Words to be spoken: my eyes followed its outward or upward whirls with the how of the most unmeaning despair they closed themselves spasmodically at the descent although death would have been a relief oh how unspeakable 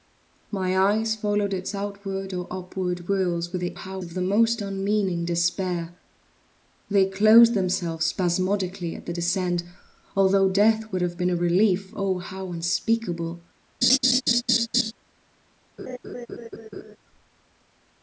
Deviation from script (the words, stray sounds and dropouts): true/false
true